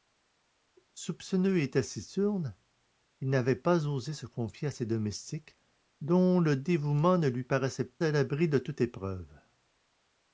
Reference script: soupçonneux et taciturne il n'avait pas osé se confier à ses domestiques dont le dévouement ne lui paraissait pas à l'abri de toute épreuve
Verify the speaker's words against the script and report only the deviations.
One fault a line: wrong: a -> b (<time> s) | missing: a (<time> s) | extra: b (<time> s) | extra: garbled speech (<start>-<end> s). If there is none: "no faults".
missing: pas (7.9 s)